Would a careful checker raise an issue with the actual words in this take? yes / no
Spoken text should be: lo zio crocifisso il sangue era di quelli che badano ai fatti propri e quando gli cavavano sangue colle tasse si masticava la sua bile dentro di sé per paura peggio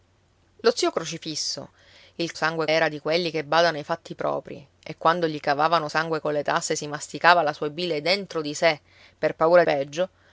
no